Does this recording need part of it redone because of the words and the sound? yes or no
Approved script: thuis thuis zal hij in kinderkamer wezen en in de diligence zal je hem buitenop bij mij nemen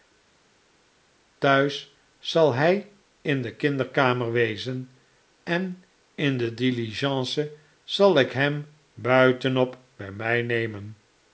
yes